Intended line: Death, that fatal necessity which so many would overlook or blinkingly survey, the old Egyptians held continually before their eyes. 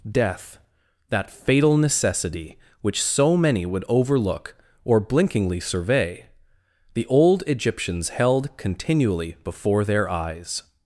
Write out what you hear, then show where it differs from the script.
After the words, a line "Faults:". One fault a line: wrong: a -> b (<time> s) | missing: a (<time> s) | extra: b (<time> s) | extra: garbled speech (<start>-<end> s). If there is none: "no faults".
Death, that fatal necessity which so many would overlook or blinkingly survey, the old Egyptians held continually before their eyes.
Faults:
no faults